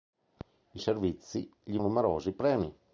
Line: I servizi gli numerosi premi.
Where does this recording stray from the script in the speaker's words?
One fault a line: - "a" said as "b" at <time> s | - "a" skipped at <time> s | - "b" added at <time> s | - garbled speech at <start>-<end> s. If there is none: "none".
none